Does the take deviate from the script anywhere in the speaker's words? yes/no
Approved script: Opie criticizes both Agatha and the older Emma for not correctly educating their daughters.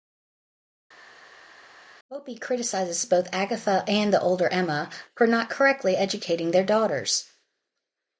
no